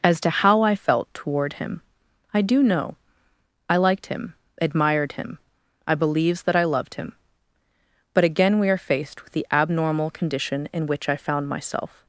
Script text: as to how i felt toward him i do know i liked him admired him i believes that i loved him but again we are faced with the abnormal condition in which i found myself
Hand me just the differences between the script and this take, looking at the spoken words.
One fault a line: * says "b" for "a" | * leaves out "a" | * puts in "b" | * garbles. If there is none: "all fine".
all fine